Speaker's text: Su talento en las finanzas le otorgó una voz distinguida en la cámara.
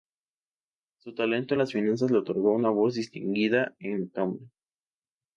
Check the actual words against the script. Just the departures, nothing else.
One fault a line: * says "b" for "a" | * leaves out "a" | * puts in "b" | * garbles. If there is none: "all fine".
all fine